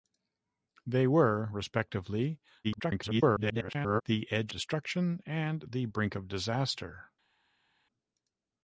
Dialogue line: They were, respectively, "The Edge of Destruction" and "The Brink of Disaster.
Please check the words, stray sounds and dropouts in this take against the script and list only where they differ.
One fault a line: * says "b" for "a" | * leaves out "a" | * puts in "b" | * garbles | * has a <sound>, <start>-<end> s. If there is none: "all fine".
* garbles
* leaves out "of"